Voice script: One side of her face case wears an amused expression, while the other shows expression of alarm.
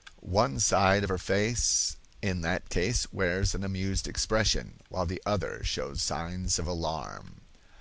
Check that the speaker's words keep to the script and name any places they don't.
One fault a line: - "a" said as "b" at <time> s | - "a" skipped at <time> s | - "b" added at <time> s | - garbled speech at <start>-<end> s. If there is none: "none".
- "in that" added at 2.2 s
- "expression" said as "signs" at 6.0 s